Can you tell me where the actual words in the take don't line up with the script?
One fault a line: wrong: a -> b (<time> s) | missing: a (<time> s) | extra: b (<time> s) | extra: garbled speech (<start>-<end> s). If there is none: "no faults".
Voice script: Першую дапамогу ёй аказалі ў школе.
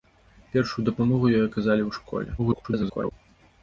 extra: garbled speech (2.4-3.1 s)